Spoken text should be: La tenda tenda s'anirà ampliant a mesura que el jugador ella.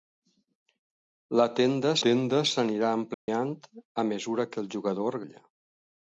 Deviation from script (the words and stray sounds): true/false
true